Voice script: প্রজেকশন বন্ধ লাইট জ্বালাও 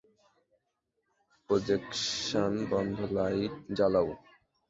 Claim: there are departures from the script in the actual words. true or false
false